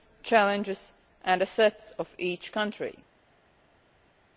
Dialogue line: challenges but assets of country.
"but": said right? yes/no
no